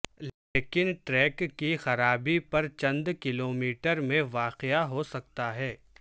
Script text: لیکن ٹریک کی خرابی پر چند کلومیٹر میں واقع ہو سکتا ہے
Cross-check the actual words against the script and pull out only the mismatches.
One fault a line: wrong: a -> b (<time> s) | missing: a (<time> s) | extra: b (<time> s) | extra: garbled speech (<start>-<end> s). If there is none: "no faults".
no faults